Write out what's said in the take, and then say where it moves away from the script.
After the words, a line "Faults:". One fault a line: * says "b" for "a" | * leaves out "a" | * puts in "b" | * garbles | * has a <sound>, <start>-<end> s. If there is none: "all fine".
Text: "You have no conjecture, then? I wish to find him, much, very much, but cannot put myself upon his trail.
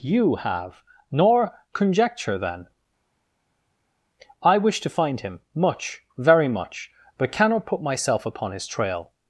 "You have nor conjecture, then? I wish to find him, much, very much, but cannot put myself upon his trail.
Faults:
* says "nor" for "no"